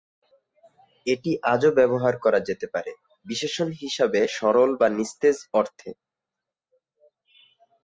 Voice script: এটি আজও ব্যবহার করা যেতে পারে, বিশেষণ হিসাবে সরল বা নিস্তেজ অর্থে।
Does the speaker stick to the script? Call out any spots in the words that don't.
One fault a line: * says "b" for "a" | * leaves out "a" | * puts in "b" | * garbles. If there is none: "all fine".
all fine